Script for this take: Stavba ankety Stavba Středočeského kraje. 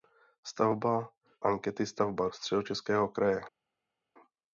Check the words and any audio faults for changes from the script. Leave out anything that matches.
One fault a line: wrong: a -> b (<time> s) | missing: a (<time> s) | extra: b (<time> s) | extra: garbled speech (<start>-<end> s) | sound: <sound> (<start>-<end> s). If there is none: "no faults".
no faults